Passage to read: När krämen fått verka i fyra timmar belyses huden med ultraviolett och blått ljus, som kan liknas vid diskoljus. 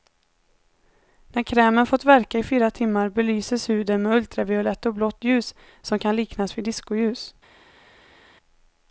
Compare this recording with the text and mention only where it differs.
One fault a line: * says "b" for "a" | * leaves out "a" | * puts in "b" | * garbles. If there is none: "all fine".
all fine